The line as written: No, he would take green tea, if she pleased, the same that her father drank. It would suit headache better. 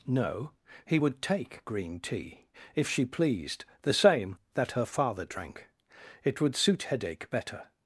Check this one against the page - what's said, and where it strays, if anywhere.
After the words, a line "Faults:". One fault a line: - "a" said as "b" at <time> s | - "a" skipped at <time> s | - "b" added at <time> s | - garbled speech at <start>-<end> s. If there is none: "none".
No, he would take green tea, if she pleased, the same that her father drank. It would suit headache better.
Faults:
none